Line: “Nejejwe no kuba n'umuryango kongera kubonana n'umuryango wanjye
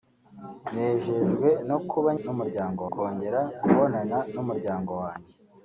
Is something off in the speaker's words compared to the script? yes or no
no